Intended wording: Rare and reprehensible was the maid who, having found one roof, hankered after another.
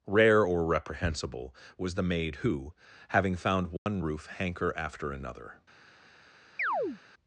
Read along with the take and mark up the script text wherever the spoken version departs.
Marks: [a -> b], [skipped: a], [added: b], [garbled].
Rare [and -> or] reprehensible was the maid who, having found one roof, [hankered -> hanker] after another.